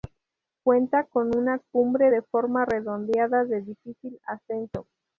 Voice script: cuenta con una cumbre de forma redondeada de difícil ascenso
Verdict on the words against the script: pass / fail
pass